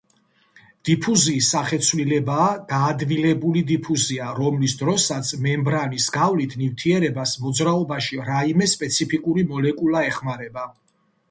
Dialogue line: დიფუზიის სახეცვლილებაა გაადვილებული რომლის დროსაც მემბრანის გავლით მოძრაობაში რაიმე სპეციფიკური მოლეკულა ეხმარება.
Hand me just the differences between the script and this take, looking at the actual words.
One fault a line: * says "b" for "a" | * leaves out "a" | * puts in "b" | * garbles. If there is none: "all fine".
* puts in "დიფუზია"
* puts in "ნივთიერებას"